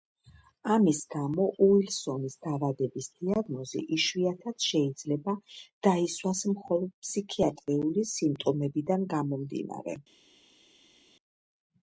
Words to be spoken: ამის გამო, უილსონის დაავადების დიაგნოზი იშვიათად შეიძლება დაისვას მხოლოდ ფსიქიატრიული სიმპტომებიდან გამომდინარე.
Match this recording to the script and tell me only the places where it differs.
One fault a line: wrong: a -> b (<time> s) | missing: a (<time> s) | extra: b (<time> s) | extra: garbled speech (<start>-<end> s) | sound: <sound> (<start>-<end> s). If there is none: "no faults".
no faults